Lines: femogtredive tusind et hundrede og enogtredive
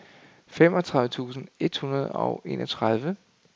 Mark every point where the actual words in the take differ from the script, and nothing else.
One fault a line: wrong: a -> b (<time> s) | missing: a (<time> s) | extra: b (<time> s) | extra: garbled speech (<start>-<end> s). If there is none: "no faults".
no faults